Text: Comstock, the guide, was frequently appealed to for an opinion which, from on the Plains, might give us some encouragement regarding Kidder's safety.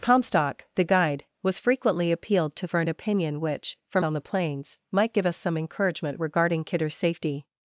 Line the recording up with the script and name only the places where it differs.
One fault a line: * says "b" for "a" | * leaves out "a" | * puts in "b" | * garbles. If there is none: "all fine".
all fine